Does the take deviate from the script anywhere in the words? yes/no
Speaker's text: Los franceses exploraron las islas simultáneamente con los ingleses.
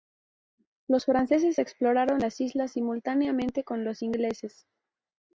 no